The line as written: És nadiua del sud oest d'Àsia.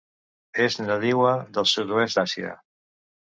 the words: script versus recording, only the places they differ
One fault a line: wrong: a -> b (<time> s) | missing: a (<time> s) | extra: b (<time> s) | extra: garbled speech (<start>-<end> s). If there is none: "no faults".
no faults